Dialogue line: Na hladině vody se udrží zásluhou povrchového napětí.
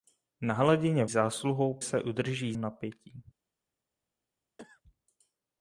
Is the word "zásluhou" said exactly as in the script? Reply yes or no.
no